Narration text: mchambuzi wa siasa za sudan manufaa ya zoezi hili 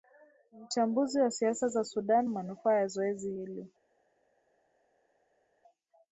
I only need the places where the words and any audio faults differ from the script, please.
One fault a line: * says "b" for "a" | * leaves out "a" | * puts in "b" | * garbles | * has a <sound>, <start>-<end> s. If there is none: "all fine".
all fine